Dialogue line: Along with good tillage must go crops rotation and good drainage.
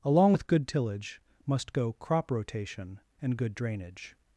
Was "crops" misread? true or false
true